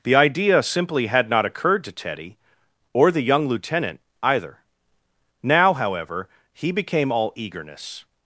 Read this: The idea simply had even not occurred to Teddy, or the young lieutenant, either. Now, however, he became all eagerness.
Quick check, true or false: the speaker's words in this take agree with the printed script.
false